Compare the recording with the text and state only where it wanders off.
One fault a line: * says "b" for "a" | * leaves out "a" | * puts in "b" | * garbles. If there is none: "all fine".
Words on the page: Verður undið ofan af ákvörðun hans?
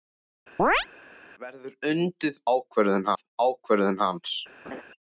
* says "ákvörðun" for "ofan"